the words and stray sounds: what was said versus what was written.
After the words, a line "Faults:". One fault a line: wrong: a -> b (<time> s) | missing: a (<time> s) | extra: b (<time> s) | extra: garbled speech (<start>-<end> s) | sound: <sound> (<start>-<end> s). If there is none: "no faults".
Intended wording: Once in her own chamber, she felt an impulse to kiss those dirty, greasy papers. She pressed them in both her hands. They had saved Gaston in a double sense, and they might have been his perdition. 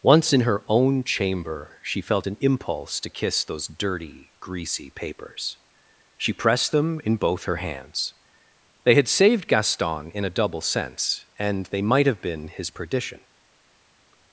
Once in her own chamber, she felt an impulse to kiss those dirty, greasy papers. She pressed them in both her hands. They had saved Gaston in a double sense, and they might have been his perdition.
Faults:
no faults